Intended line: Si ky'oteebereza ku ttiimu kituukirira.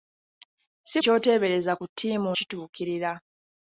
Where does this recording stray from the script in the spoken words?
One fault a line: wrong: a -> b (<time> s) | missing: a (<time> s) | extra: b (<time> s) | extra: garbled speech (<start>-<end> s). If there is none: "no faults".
no faults